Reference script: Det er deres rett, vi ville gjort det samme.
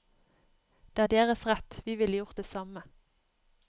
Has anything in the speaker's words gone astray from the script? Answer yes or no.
no